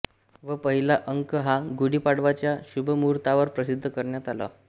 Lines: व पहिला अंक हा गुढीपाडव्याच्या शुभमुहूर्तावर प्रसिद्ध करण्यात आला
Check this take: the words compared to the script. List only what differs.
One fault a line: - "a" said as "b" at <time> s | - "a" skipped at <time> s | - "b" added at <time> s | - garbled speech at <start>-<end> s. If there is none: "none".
none